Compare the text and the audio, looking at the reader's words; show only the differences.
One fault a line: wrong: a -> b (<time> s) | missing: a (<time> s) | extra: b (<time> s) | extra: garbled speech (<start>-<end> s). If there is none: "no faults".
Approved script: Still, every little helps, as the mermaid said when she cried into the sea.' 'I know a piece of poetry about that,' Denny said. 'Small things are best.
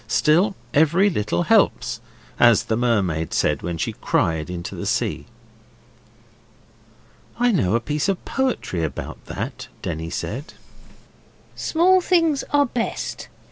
no faults